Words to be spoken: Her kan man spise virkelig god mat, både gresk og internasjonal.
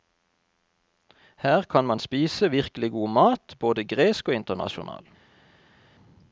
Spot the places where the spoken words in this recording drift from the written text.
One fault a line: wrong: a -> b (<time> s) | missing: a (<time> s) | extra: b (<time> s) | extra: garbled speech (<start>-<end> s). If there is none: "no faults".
no faults